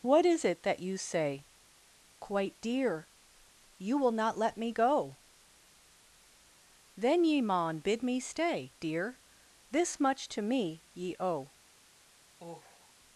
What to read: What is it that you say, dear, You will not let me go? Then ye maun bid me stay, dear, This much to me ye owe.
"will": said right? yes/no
yes